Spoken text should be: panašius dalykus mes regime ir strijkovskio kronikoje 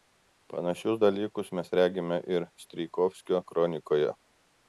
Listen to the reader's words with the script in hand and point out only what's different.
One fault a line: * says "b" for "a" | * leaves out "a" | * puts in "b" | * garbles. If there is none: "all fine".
all fine